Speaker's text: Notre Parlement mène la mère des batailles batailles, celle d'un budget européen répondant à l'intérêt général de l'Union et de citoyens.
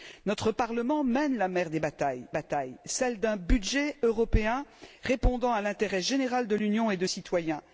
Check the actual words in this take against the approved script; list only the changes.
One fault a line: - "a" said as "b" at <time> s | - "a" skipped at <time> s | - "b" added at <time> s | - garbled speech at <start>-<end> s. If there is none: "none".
none